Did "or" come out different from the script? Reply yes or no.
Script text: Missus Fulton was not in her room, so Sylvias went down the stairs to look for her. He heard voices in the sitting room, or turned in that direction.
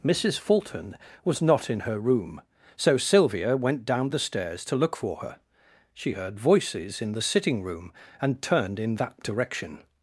yes